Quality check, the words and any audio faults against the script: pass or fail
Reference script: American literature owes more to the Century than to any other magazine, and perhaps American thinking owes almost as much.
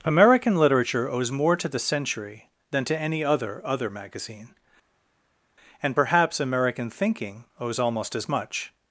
fail